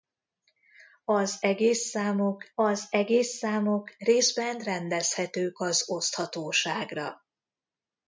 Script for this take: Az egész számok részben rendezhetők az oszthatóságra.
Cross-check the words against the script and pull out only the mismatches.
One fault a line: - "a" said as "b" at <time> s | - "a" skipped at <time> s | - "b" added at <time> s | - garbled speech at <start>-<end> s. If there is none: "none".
- "az egész számok" added at 2.6 s